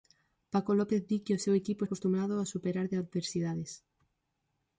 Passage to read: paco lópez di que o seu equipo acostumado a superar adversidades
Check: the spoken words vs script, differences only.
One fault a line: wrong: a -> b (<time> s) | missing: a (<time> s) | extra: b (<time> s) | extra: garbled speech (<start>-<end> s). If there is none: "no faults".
no faults